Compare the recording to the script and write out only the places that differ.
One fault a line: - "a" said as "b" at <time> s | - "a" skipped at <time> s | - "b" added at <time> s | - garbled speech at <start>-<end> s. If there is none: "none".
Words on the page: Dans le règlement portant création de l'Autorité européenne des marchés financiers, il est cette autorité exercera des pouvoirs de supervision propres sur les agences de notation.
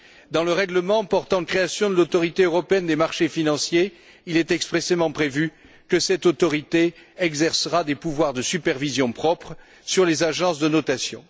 - "expressément prévu que" added at 4.5 s